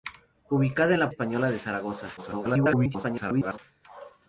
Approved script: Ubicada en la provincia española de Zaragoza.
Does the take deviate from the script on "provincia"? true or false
true